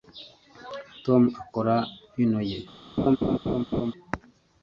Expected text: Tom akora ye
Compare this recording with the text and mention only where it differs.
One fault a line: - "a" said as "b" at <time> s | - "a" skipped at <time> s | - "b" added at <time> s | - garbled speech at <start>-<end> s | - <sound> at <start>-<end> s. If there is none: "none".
- "vino" added at 2.1 s
- laugh at 3.0-3.9 s